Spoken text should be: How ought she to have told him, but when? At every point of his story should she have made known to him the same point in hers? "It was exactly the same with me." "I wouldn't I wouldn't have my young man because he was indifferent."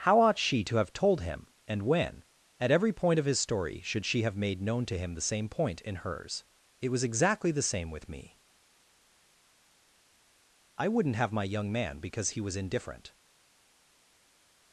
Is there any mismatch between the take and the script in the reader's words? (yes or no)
yes